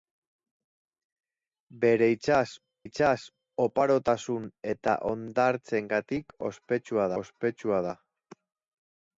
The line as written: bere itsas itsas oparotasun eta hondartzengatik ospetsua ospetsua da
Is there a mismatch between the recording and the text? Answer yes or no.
no